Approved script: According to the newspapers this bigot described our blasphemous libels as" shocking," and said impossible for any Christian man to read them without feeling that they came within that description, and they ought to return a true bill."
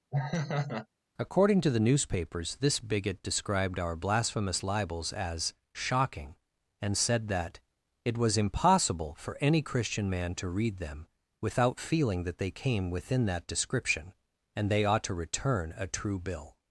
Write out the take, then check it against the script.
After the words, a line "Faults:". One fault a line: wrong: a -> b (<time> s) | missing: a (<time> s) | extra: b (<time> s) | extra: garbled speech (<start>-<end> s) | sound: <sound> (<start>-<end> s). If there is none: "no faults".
According to the newspapers this bigot described our blasphemous libels as" shocking," and said that" it was impossible for any Christian man to read them without feeling that they came within that description, and they ought to return a true bill."
Faults:
sound: laugh (0.1-0.9 s)
extra: that it was (7.3 s)